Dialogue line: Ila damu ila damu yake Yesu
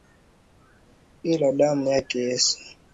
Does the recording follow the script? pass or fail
fail